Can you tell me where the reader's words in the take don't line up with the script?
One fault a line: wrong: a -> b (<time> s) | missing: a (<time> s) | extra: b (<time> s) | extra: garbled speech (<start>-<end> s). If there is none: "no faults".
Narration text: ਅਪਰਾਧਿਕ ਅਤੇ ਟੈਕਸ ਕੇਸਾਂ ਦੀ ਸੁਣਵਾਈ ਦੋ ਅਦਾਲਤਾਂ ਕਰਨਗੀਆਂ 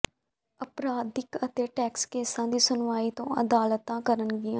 no faults